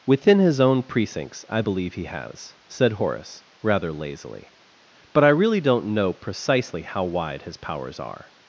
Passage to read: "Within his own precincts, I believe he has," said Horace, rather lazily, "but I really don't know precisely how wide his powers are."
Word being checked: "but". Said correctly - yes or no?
yes